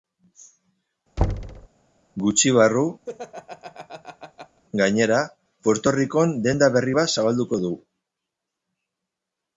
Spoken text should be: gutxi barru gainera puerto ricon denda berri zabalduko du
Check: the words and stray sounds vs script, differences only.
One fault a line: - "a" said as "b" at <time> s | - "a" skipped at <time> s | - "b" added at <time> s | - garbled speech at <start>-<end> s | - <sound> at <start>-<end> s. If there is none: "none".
- thud at 1.2-1.7 s
- laugh at 3.1-4.6 s
- "bat" added at 7.0 s